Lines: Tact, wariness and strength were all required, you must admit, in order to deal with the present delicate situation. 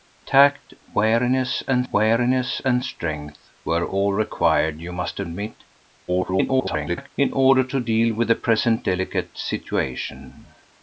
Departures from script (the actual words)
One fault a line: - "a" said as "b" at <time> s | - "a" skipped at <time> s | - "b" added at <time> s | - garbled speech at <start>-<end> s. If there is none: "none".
- "wariness and" added at 1.9 s
- garbled speech at 6.1-7.1 s